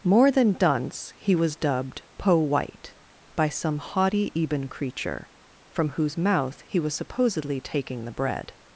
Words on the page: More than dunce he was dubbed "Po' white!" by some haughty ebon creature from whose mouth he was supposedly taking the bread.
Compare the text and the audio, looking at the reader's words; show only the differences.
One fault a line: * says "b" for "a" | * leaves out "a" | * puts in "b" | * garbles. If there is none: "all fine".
all fine